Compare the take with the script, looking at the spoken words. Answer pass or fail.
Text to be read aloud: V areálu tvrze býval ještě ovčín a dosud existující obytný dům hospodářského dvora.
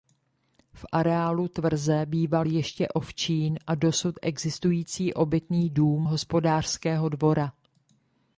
pass